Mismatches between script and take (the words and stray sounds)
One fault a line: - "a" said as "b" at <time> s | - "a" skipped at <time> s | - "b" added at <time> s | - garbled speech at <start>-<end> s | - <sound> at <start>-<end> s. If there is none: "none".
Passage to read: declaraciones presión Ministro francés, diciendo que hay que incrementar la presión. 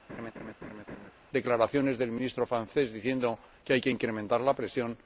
- laugh at 0.1-1.1 s
- "presión" said as "del" at 2.0 s